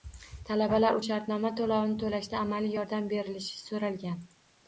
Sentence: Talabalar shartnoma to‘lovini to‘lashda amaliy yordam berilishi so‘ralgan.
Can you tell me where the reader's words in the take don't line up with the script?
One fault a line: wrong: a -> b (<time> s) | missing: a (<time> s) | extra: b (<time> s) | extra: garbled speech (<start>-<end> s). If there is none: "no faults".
no faults